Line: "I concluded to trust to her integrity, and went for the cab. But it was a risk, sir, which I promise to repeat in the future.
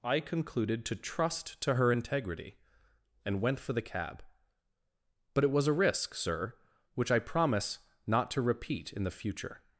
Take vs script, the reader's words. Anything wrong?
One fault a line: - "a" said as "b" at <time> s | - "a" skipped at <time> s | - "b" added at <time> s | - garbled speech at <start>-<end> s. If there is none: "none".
- "not" added at 8.1 s